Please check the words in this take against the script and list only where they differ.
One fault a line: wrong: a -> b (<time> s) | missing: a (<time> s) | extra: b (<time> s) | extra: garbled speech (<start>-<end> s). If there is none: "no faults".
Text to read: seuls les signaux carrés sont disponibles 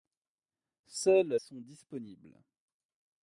missing: les signaux carrés (1.4 s)